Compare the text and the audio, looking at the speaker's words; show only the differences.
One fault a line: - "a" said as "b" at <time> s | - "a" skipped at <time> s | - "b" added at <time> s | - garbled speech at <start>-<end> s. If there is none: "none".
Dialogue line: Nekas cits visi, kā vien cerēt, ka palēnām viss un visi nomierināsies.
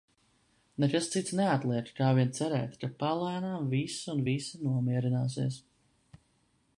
- "visi" said as "neatliek" at 1.4 s